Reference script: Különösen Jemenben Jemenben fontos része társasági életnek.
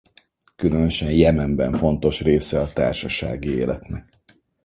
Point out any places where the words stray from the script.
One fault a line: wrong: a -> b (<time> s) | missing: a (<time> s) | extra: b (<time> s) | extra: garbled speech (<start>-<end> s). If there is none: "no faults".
missing: Jemenben (1.8 s)
extra: a (2.6 s)